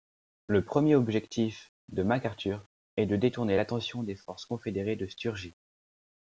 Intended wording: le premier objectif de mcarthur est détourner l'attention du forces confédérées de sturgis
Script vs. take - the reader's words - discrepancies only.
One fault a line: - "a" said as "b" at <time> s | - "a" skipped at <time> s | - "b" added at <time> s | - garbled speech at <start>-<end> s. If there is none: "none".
- "de" added at 3.0 s
- "du" said as "des" at 4.0 s